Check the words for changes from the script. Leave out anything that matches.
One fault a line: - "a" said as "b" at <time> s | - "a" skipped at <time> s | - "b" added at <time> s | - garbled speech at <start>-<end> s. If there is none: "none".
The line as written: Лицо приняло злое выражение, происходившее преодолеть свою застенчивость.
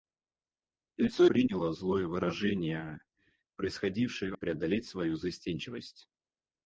none